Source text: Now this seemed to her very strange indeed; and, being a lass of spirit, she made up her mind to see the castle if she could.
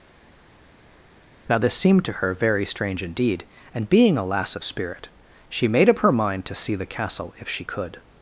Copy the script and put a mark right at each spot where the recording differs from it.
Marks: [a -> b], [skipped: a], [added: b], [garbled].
Now this seemed to her very strange indeed; and, being a lass of spirit, she made up her mind to see the castle if she could.